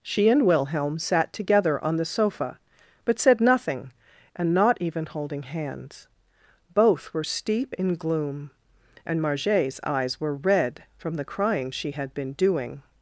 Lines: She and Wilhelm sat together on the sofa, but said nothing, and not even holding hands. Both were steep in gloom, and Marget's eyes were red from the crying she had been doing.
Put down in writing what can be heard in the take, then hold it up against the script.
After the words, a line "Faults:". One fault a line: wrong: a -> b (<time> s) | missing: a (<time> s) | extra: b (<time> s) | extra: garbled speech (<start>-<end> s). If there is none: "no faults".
She and Wilhelm sat together on the sofa, but said nothing, and not even holding hands. Both were steep in gloom, and Marget's eyes were red from the crying she had been doing.
Faults:
no faults